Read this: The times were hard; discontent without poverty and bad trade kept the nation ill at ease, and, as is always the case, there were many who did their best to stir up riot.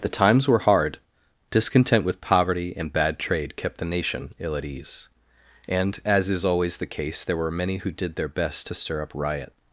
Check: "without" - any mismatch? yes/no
yes